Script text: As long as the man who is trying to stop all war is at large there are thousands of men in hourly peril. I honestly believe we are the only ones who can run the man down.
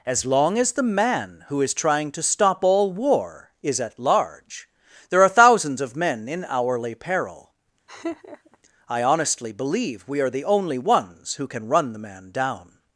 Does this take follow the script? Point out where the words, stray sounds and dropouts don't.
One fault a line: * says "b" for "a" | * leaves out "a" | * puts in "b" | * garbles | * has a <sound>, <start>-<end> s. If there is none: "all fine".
* has a laugh, 7.9-8.6 s